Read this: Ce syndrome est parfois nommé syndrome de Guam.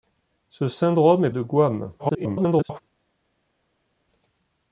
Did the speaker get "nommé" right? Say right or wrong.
wrong